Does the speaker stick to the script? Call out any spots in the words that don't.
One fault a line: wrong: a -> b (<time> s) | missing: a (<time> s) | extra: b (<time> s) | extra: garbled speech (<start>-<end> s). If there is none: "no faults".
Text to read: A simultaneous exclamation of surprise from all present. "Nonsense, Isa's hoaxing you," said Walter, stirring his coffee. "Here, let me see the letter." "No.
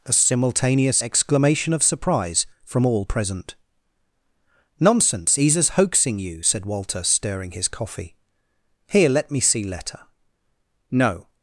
missing: the (9.6 s)